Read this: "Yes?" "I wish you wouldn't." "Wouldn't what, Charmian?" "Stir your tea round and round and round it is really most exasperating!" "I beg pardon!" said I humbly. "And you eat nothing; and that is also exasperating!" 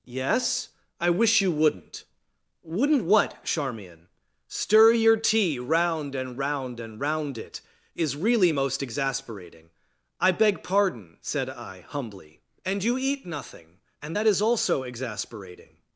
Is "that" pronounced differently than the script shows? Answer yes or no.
no